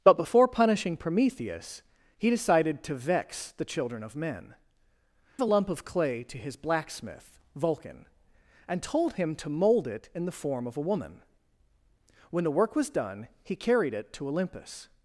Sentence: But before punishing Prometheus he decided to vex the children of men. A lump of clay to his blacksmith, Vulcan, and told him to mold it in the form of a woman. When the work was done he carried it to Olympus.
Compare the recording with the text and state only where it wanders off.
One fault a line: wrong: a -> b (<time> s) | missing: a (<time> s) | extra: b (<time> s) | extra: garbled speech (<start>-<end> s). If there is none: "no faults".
no faults